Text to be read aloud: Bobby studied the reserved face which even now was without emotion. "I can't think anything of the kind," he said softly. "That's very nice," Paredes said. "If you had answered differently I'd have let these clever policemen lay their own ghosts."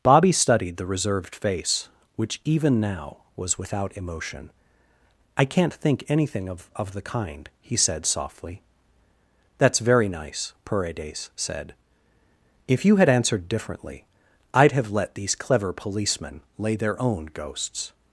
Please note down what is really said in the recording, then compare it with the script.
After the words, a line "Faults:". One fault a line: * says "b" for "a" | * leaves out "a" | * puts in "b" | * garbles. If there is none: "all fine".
Bobby studied the reserved face which even now was without emotion. "I can't think anything of of the kind," he said softly. "That's very nice," Paredes said. "If you had answered differently I'd have let these clever policemen lay their own ghosts."
Faults:
* puts in "of"